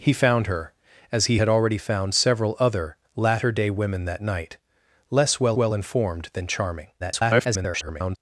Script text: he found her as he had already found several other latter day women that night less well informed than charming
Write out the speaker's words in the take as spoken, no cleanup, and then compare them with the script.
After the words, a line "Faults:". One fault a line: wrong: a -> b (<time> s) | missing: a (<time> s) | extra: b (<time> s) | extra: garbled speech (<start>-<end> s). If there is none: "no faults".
he found her as he had already found several other latter day women that night less well well informed than charming [garbled]
Faults:
extra: well (5.6 s)
extra: garbled speech (7.0-8.2 s)